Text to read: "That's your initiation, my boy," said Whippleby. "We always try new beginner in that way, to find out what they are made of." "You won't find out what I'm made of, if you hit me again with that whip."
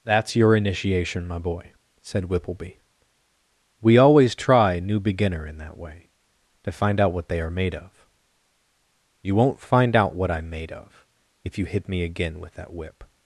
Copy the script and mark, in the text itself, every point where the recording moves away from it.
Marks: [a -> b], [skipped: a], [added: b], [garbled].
"That's your initiation, my boy," said Whippleby. "We always try new beginner in that way, to find out what they are made of." "You won't find out what I'm made of, if you hit me again with that whip."